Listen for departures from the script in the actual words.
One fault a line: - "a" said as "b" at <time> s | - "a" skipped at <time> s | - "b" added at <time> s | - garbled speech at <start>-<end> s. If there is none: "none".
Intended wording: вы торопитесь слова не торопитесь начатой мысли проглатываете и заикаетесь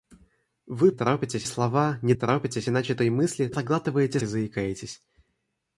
none